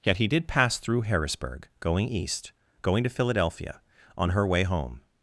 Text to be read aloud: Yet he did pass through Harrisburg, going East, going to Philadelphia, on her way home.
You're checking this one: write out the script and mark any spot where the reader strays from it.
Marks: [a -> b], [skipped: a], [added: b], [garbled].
Yet he did pass through Harrisburg, going East, going to Philadelphia, on her way home.